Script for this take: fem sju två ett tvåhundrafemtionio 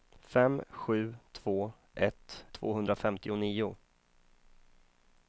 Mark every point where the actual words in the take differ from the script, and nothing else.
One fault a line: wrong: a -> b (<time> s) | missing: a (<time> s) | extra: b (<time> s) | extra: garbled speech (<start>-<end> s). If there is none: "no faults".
no faults